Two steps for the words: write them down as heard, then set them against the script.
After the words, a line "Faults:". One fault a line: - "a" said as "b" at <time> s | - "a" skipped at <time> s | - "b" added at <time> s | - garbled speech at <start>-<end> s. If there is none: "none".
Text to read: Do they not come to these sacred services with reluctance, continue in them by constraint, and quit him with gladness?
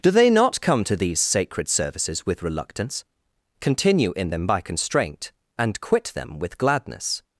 Do they not come to these sacred services with reluctance, continue in them by constraint, and quit them with gladness?
Faults:
- "him" said as "them" at 6.1 s